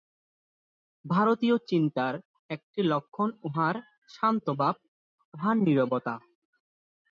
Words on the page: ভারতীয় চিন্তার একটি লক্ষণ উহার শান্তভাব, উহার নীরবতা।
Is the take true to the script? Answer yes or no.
yes